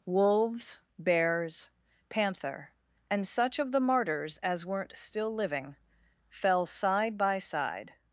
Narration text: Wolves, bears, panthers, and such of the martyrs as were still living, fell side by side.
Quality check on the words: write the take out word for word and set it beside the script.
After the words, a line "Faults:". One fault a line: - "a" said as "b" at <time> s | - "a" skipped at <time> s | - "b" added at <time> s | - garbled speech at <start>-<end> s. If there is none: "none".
Wolves, bears, panther, and such of the martyrs as weren't still living, fell side by side.
Faults:
- "panthers" said as "panther" at 2.1 s
- "were" said as "weren't" at 4.6 s